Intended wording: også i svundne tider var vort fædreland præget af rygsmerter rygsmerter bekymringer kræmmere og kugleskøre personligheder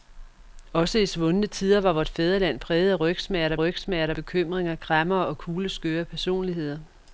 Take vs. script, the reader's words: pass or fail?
pass